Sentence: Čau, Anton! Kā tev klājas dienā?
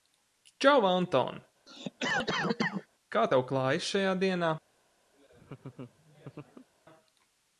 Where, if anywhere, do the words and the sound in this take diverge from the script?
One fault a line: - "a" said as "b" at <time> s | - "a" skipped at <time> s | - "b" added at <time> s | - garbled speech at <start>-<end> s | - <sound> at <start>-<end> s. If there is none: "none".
- cough at 1.7-2.9 s
- "šajā" added at 3.9 s
- laugh at 5.1-6.7 s